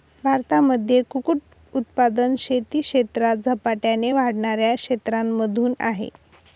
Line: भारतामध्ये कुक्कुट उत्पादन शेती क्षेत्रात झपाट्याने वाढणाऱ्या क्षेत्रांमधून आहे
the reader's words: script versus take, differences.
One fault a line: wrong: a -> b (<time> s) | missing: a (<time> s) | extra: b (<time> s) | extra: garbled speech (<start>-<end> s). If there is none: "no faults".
no faults